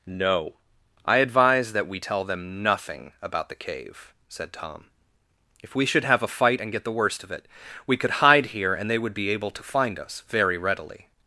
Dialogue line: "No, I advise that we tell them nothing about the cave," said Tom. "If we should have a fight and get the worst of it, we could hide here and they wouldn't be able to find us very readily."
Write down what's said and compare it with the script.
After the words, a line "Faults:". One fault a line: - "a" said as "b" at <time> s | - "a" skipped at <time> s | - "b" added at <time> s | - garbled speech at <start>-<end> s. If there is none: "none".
"No, I advise that we tell them nothing about the cave," said Tom. "If we should have a fight and get the worst of it, we could hide here and they would be able to find us very readily."
Faults:
- "wouldn't" said as "would" at 9.0 s